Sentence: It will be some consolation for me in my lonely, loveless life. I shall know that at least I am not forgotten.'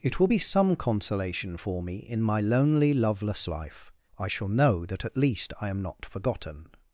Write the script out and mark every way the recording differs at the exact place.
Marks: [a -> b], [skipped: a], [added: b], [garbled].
It will be some consolation for me in my lonely, loveless life. I shall know that at least I am not forgotten.'